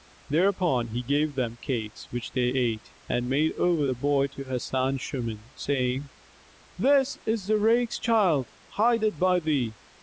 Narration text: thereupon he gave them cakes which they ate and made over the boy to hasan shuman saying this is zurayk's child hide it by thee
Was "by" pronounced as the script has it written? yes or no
yes